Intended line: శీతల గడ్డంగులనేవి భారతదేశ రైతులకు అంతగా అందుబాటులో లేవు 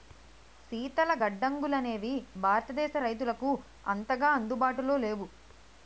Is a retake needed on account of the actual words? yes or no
no